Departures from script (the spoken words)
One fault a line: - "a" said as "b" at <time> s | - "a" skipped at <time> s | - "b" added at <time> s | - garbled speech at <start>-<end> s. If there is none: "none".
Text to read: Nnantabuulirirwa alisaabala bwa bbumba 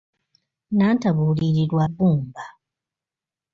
- "alisaabala bwa" skipped at 1.8 s